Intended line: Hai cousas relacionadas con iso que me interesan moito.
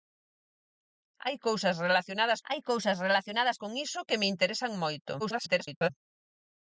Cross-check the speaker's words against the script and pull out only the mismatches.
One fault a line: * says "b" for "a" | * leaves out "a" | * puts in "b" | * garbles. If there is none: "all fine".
* puts in "hai cousas relacionadas"
* garbles